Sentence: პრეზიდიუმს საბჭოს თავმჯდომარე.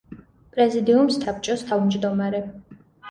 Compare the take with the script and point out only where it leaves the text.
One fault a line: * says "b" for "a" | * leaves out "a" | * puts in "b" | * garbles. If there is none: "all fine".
all fine